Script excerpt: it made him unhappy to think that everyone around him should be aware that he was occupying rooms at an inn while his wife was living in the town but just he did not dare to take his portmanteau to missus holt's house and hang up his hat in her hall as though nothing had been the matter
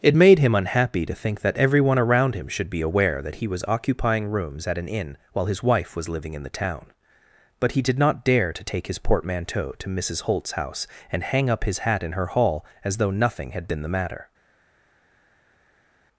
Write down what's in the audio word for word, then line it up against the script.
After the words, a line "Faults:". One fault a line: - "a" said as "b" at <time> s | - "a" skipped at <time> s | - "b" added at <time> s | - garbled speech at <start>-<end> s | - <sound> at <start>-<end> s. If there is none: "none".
it made him unhappy to think that everyone around him should be aware that he was occupying rooms at an inn while his wife was living in the town but he did not dare to take his portmanteau to missus holt's house and hang up his hat in her hall as though nothing had been the matter
Faults:
- "just" skipped at 7.7 s